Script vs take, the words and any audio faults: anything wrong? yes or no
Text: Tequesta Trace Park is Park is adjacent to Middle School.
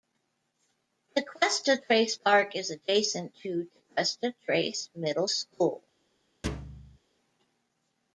yes